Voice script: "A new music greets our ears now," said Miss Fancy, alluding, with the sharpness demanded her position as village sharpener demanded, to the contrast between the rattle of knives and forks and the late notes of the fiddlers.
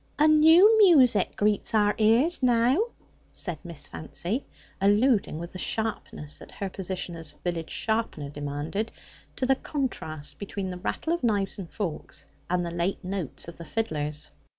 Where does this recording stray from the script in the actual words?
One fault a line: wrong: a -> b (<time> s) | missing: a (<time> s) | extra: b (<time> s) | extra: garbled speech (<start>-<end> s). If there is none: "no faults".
wrong: demanded -> that (6.4 s)